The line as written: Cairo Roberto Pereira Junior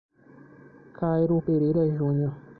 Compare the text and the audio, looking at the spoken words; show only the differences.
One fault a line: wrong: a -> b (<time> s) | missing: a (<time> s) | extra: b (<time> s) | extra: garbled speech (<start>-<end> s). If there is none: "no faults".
missing: Roberto (1.4 s)